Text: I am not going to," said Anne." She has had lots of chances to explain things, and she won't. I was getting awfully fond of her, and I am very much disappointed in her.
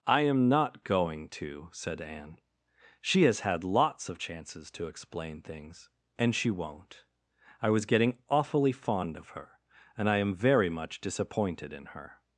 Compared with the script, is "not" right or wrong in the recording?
right